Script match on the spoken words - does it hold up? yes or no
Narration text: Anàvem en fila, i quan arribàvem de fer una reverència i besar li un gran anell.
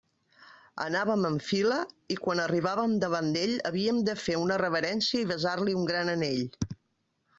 no